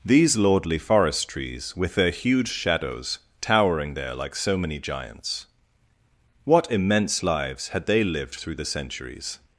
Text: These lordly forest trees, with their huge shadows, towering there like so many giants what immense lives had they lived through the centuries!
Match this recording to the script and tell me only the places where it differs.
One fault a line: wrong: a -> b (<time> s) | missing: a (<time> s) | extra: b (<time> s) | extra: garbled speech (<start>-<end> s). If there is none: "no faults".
no faults